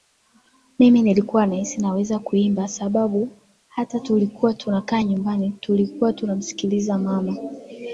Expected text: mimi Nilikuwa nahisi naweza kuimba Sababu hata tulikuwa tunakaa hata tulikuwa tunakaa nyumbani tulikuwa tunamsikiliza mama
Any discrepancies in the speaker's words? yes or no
yes